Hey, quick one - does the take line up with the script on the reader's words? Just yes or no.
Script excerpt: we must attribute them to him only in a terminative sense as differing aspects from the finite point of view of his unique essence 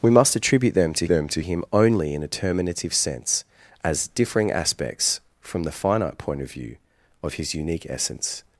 no